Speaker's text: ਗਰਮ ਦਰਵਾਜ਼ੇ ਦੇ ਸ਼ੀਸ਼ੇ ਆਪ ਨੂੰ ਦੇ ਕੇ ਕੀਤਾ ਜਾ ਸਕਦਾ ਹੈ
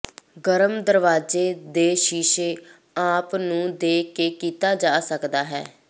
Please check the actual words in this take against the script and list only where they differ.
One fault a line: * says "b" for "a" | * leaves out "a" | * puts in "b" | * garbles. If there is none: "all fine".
all fine